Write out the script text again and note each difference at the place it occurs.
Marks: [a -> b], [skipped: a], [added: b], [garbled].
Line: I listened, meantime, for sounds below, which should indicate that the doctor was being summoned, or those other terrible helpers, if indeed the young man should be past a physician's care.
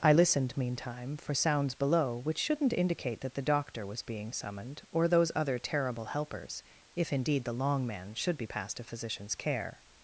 I listened, meantime, for sounds below, which [should -> shouldn't] indicate that the doctor was being summoned, or those other terrible helpers, if indeed the [young -> long] man should be past a physician's care.